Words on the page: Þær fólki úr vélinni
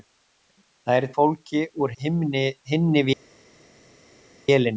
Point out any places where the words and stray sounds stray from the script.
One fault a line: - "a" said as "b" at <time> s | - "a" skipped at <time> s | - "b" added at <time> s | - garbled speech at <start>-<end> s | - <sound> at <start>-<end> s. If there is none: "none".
none